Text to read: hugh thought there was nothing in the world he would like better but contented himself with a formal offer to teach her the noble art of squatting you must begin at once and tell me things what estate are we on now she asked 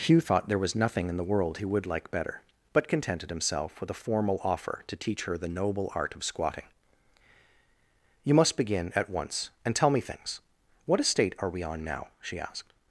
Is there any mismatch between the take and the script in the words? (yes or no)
no